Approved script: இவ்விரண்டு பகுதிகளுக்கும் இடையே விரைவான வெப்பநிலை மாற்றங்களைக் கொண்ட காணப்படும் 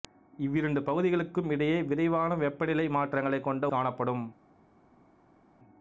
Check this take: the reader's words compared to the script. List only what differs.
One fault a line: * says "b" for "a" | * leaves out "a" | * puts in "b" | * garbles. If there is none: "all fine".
all fine